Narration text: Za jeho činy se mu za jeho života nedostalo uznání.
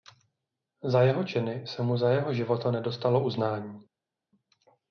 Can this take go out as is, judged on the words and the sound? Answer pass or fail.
pass